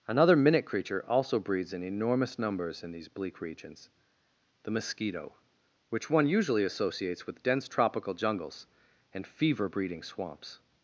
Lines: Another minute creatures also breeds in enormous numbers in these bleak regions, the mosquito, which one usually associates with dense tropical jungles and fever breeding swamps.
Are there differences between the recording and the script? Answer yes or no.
yes